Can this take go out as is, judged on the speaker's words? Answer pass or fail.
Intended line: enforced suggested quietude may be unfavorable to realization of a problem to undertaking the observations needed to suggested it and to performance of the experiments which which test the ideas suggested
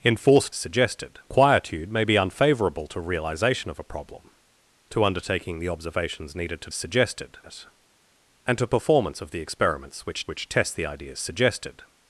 pass